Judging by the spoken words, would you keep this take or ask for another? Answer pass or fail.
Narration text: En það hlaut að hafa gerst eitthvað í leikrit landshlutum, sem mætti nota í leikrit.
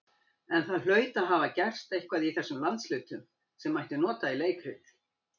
fail